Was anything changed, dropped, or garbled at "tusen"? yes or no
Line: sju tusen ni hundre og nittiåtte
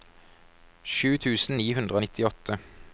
no